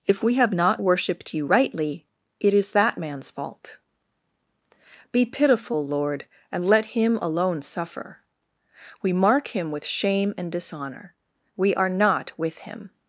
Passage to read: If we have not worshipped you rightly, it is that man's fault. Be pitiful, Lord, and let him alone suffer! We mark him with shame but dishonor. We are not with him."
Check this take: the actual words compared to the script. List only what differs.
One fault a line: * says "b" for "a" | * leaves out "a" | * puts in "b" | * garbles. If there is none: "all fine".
* says "and" for "but"